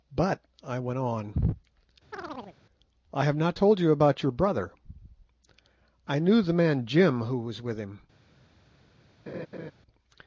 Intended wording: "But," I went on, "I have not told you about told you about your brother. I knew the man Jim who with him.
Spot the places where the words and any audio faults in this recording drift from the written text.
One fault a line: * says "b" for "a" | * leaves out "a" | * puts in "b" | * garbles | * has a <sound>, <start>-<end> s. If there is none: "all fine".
* has a chirp, 2.1-2.6 s
* leaves out "told you about"
* puts in "was"
* has a laugh, 9.3-9.7 s